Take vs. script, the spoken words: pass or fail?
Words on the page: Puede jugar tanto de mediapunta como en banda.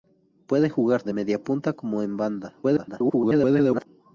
fail